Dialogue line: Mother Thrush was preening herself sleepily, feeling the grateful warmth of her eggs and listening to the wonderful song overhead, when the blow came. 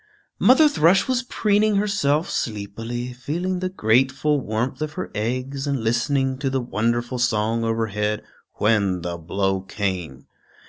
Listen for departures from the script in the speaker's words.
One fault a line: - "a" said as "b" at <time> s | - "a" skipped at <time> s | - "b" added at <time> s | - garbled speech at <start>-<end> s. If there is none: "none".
none